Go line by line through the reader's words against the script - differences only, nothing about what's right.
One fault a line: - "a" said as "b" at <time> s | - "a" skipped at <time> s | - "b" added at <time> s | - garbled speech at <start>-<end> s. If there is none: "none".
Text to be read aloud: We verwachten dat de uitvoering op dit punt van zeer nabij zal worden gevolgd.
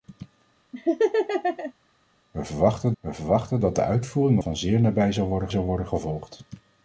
- "we verwachten" added at 3.0 s
- "op dit punt" skipped at 4.4 s
- "zal worden" added at 5.5 s